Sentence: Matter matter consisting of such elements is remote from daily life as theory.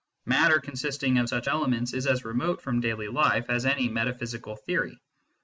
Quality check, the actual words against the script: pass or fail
fail